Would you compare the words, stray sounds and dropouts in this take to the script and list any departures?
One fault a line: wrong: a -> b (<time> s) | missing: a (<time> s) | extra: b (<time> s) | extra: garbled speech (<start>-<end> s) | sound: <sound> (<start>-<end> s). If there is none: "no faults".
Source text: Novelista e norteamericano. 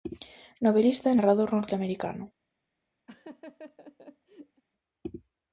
extra: narrador (1.2 s)
sound: laugh (3.1-4.6 s)